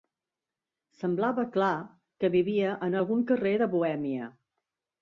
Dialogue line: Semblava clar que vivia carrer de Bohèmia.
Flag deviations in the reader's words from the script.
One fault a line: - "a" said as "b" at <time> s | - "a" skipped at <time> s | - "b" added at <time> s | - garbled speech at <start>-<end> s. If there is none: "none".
- "en algun" added at 2.9 s